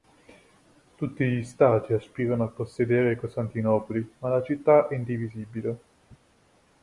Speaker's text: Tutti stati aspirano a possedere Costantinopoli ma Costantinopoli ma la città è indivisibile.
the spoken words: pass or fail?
fail